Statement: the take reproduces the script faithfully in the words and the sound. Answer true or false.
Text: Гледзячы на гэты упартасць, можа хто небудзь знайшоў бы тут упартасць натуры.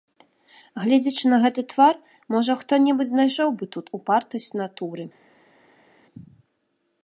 false